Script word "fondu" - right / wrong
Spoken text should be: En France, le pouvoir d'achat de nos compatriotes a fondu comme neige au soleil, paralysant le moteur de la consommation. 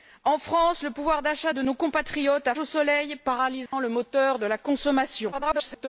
wrong